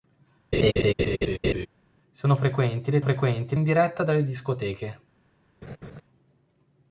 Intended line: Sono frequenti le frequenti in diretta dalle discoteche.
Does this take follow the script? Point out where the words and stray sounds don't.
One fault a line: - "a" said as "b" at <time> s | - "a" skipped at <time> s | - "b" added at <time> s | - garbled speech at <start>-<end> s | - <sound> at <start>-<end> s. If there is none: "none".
- laugh at 0.5-1.7 s
- laugh at 5.6-6.0 s